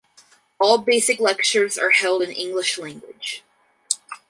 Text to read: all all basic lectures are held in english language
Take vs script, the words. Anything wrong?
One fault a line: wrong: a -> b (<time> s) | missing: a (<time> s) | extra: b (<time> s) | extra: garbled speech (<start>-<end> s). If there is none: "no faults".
missing: all (0.8 s)